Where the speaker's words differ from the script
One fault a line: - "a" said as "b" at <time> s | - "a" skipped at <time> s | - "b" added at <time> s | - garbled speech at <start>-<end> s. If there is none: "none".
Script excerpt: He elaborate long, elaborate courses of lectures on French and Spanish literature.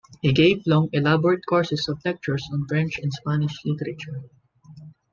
- "elaborate" said as "gave" at 0.3 s